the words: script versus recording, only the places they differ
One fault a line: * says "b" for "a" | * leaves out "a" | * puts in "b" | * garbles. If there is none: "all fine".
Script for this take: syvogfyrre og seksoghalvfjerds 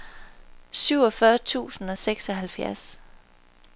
* puts in "tusind"